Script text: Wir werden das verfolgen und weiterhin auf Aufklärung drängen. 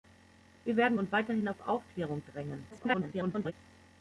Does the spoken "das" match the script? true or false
false